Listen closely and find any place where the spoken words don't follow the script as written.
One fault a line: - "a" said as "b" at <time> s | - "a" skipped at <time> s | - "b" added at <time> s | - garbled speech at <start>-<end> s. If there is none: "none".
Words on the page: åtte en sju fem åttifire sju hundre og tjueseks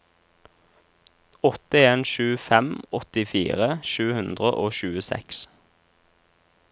none